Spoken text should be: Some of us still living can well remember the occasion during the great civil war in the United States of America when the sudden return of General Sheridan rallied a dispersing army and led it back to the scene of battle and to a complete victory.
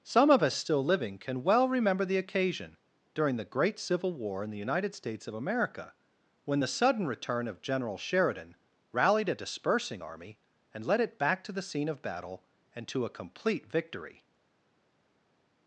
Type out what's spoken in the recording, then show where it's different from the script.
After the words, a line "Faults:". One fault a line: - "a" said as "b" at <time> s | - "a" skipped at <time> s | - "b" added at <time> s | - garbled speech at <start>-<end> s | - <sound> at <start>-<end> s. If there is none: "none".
Some of us still living can well remember the occasion during the great civil war in the United States of America when the sudden return of General Sheridan rallied a dispersing army and led it back to the scene of battle and to a complete victory.
Faults:
none